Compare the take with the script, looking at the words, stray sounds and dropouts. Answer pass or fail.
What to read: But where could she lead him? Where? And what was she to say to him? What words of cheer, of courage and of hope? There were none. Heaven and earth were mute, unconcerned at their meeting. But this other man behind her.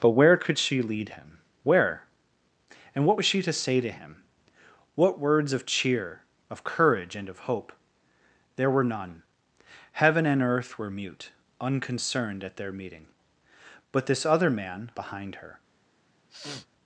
fail